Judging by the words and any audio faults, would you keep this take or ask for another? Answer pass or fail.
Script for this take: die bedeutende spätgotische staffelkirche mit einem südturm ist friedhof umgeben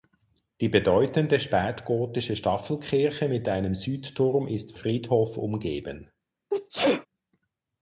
fail